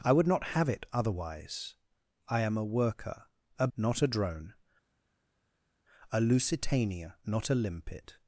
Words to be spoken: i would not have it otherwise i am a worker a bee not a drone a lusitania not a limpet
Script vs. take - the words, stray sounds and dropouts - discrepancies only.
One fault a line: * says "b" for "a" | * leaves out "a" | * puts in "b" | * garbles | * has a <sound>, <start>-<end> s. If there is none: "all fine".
* leaves out "bee"